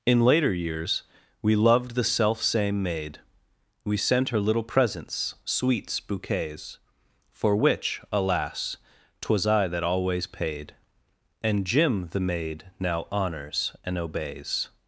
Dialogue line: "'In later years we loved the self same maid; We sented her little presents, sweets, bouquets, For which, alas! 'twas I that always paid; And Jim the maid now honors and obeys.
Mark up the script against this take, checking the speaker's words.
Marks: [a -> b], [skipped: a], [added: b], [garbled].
"'In later years we loved the self same maid; We [sented -> sent] her little presents, sweets, bouquets, For which, alas! 'twas I that always paid; And Jim the maid now honors and obeys.